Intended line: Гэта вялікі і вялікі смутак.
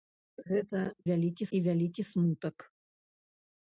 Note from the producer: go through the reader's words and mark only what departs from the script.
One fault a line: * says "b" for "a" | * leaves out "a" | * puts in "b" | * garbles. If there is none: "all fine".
all fine